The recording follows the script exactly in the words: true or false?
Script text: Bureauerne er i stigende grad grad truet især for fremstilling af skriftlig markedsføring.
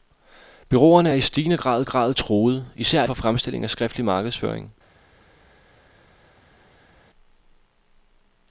true